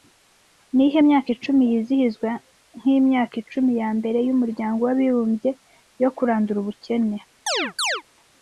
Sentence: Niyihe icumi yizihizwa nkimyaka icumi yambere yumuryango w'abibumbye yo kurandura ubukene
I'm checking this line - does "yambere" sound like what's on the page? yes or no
yes